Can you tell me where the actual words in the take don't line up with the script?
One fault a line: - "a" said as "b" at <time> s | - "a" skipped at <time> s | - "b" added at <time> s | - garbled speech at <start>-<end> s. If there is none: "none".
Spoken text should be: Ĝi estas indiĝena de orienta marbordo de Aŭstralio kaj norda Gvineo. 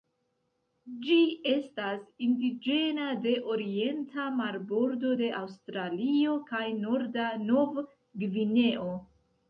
- "Nov" added at 7.5 s